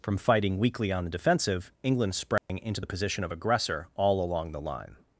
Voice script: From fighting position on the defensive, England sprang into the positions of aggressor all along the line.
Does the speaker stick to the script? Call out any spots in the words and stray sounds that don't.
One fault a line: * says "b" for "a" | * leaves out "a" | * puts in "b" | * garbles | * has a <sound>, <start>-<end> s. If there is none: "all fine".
* says "weakly" for "position"
* has a dropout, 2.4-2.5 s
* says "position" for "positions"